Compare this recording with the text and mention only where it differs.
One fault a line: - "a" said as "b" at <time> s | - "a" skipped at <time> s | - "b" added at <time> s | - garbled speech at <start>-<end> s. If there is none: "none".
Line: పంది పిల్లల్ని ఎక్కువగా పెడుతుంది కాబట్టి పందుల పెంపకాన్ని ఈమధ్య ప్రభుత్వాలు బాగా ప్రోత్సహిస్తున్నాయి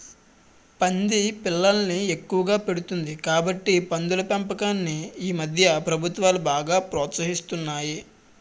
none